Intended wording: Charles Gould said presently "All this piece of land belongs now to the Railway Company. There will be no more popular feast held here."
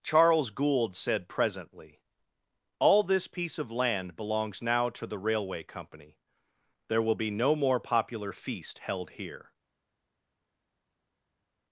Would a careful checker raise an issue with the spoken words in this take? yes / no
no